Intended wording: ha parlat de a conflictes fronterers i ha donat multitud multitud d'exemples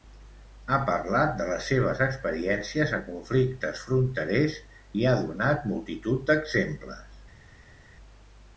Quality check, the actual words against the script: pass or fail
fail